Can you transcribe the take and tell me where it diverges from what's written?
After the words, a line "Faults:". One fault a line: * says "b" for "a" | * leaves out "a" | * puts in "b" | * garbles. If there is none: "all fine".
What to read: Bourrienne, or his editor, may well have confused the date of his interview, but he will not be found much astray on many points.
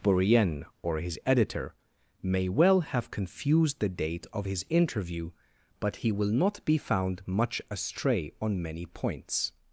Bourrienne, or his editor, may well have confused the date of his interview, but he will not be found much astray on many points.
Faults:
all fine